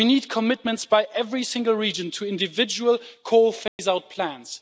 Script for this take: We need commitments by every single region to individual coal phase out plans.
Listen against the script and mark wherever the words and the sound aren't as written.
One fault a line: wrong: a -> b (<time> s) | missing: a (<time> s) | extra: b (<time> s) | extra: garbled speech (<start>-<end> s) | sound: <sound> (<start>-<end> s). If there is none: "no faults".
sound: dropout (3.7-3.8 s)